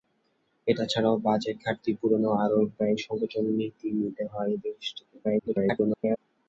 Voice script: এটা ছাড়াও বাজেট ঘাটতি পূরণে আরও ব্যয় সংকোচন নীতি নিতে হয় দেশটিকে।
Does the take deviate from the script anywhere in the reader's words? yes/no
yes